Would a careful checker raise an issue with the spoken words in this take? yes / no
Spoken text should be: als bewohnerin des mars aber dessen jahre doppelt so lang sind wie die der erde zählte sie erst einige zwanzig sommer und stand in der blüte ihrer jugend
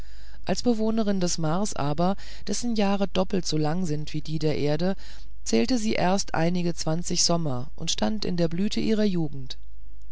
no